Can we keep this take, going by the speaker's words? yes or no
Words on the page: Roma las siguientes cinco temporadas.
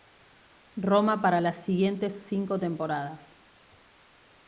no